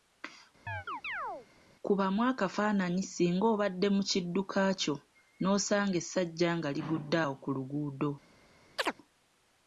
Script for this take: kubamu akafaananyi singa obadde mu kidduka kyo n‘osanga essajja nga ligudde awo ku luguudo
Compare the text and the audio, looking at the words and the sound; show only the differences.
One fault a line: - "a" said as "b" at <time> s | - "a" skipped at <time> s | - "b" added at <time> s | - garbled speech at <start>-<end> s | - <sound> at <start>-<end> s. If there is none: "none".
- chirp at 0.7-1.5 s
- chirp at 8.8-8.9 s